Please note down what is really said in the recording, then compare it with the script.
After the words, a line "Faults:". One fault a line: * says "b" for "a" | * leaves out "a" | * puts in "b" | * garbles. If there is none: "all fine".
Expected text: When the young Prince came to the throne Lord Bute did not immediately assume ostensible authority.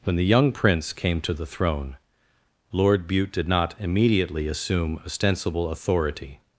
When the young Prince came to the throne Lord Bute did not immediately assume ostensible authority.
Faults:
all fine